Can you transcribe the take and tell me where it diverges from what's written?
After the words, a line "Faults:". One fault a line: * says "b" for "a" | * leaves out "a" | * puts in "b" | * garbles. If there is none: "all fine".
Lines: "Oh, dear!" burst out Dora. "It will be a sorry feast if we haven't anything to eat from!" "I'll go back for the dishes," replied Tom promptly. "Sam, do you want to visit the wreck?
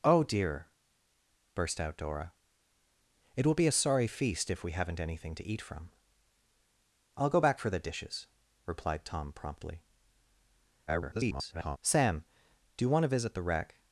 "Oh, dear!" burst out Dora. "It will be a sorry feast if we haven't anything to eat from!" "I'll go back for the dishes," replied Tom promptly. [garbled] "Sam, do you want to visit the wreck?
Faults:
* garbles